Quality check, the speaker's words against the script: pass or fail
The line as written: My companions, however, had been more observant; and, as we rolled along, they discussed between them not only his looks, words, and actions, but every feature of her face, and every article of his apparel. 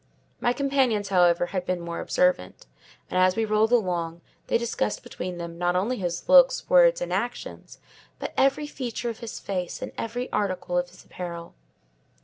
fail